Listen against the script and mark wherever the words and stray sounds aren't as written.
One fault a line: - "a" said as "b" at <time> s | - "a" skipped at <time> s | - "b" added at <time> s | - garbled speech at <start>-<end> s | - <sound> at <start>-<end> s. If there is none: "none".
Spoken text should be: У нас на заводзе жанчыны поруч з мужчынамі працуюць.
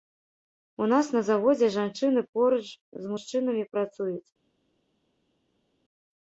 none